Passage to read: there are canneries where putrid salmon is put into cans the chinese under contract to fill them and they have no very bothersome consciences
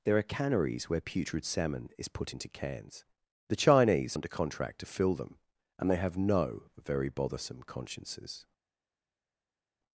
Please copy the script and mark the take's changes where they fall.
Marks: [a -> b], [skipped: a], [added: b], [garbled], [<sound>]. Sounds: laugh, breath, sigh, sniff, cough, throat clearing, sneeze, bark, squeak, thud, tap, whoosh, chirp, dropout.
there are canneries where putrid salmon is put into cans the chinese under contract to fill them and they have no very bothersome consciences